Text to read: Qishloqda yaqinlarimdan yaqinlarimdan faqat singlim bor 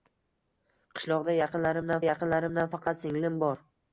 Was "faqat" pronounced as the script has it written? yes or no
yes